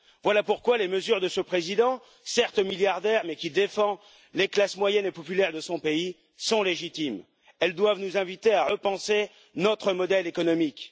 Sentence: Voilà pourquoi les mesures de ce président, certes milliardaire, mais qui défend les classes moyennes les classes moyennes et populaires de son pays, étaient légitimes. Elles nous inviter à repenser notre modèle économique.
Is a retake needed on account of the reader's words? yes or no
yes